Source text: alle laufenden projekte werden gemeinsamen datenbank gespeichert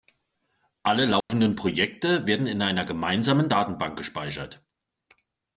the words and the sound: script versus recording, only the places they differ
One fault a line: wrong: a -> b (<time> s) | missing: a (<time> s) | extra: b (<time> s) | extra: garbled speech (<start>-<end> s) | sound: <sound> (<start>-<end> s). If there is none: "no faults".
sound: dropout (1.2-1.3 s)
extra: in einer (2.5 s)